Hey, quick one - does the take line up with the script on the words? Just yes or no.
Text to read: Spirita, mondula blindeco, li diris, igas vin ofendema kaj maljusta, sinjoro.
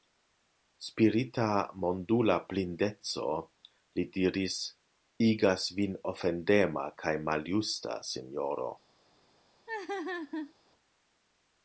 yes